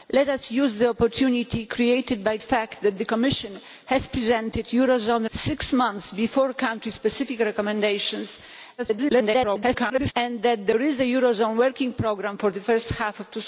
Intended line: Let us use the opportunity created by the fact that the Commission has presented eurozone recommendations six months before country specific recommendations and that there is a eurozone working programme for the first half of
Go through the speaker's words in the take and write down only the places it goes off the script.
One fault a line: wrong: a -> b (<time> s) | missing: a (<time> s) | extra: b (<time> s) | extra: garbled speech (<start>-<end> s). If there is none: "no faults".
missing: the (2.4 s)
missing: recommendations (5.3 s)
extra: garbled speech (8.8-10.1 s)